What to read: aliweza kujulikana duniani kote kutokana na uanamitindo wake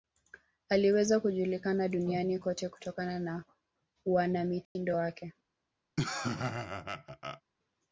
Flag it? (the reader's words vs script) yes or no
no